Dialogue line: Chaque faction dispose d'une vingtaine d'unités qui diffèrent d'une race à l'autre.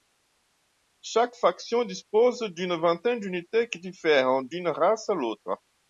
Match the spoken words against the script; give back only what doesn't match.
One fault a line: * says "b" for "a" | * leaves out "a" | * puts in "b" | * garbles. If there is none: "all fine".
all fine